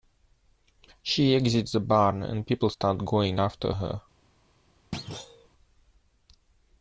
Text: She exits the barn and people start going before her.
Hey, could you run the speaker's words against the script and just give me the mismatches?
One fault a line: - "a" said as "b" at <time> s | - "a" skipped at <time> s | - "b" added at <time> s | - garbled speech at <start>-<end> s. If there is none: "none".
- "before" said as "after" at 3.4 s